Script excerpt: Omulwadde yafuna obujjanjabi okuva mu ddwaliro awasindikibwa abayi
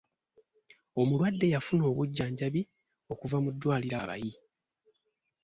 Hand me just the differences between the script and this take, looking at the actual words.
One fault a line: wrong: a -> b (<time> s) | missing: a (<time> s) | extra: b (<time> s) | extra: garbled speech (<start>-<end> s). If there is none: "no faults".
missing: awasindikibwa (4.0 s)